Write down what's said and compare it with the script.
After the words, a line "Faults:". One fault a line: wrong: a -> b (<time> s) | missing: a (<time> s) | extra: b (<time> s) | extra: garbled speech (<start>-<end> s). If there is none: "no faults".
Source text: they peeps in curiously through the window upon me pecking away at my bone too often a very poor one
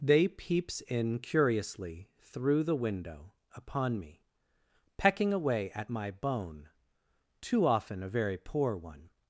they peeps in curiously through the window upon me pecking away at my bone too often a very poor one
Faults:
no faults